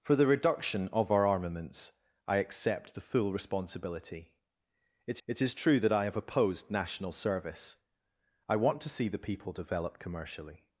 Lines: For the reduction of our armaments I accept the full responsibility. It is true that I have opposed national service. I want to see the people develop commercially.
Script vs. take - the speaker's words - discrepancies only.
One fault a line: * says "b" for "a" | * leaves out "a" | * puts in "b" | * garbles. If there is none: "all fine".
* puts in "it"